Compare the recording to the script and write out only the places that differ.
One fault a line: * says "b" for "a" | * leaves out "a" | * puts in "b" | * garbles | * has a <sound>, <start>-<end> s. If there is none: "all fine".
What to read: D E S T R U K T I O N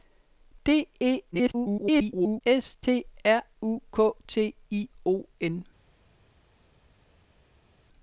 * garbles